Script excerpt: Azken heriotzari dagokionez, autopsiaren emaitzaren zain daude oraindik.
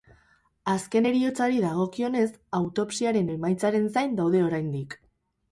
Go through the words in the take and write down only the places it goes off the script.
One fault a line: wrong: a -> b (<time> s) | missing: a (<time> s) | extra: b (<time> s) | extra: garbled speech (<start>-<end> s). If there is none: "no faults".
no faults